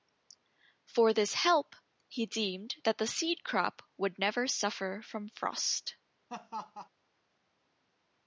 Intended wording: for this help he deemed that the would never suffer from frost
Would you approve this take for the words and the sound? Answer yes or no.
no